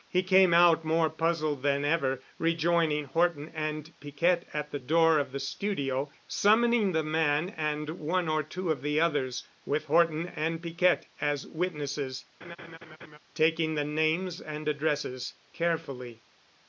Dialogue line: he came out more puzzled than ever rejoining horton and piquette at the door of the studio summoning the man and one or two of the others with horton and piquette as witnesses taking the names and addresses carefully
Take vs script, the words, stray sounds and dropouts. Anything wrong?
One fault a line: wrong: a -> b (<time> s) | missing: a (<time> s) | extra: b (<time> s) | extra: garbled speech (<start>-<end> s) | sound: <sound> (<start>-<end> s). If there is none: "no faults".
sound: laugh (12.4-13.2 s)